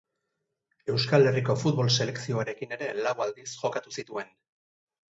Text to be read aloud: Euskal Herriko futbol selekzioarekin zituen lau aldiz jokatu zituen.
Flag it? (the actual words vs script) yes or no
yes